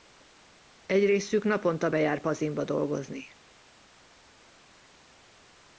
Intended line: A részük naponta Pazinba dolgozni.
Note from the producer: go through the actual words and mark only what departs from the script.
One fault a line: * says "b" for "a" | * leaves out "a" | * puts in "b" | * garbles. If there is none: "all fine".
* says "Egy" for "A"
* puts in "bejár"